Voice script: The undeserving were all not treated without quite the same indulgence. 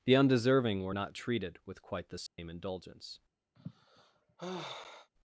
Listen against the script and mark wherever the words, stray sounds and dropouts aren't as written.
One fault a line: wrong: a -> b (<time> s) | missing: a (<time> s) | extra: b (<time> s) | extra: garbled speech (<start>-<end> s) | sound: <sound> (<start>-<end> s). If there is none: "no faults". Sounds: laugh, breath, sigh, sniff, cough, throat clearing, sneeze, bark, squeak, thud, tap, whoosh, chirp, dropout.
missing: all (0.9 s)
wrong: without -> with (1.6 s)
sound: dropout (2.3-2.4 s)
sound: sigh (3.6-5.1 s)